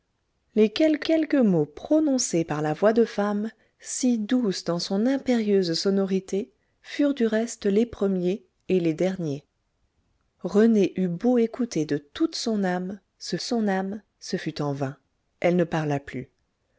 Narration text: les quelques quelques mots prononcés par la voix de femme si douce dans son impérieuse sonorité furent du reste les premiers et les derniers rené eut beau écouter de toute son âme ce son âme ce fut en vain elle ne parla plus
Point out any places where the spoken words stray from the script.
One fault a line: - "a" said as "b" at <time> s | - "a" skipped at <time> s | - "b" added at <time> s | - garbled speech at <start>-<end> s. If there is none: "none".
none